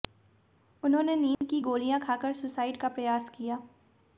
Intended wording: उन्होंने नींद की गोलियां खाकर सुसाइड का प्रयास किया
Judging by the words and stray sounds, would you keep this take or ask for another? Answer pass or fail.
fail